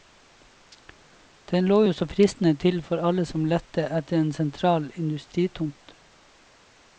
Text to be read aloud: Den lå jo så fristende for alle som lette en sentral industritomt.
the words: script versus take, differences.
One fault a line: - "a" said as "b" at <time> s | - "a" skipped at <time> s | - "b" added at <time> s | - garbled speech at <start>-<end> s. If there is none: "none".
- "til" added at 2.5 s
- "etter" added at 4.0 s